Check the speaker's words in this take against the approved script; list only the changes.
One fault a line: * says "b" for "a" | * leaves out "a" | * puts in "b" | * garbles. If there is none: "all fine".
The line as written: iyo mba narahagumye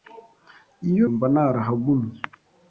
all fine